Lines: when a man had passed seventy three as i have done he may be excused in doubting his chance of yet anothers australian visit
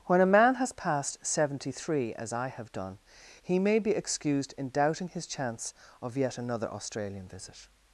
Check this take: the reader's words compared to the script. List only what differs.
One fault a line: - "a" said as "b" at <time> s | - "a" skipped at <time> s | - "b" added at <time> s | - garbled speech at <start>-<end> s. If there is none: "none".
- "had" said as "has" at 0.6 s
- "anothers" said as "another" at 6.4 s